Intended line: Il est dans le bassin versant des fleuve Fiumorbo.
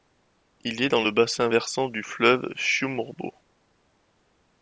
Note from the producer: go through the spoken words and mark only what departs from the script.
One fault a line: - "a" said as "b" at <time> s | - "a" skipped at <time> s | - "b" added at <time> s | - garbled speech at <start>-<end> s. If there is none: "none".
- "des" said as "du" at 1.9 s